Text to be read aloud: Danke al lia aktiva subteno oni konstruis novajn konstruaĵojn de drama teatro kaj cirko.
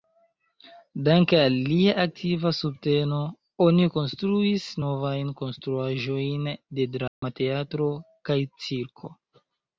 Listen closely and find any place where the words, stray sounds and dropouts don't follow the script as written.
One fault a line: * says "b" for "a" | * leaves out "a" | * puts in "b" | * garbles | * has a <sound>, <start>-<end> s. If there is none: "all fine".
* has a dropout, 7.1-7.2 s